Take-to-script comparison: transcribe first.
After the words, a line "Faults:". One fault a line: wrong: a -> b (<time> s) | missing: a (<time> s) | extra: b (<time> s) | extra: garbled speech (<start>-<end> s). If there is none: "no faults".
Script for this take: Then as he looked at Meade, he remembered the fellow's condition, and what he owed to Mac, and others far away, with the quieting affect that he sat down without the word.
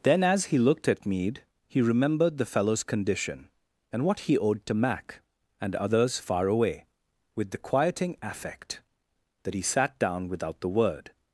Then as he looked at Meade, he remembered the fellow's condition, and what he owed to Mac, and others far away, with the quieting affect that he sat down without the word.
Faults:
no faults